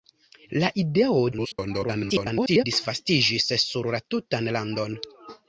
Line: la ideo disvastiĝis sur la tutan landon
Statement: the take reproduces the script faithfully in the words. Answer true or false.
false